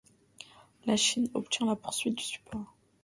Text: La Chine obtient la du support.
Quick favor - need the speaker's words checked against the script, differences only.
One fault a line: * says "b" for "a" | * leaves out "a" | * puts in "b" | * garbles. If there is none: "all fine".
* puts in "poursuite"